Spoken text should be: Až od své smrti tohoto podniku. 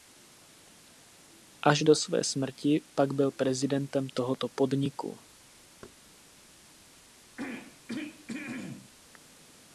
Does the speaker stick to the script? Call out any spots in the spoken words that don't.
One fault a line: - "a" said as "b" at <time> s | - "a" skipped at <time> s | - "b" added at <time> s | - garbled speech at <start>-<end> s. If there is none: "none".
- "od" said as "do" at 1.8 s
- "pak byl prezidentem" added at 2.9 s